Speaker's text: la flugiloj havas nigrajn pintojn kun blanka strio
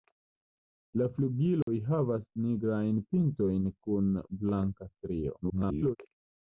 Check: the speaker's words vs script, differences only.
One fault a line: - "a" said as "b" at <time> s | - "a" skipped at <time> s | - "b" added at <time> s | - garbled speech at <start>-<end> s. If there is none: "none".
- garbled speech at 5.4-6.0 s